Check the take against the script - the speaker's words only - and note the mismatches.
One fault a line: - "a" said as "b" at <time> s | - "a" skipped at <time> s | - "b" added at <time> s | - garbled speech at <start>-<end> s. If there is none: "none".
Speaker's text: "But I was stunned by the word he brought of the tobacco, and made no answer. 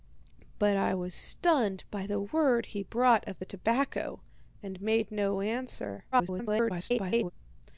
- garbled speech at 6.1-7.3 s